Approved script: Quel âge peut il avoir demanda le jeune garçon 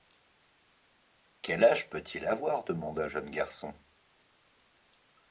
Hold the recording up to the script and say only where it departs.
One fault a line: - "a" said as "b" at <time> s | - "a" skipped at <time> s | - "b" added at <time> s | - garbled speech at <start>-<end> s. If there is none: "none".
- "le" skipped at 3.0 s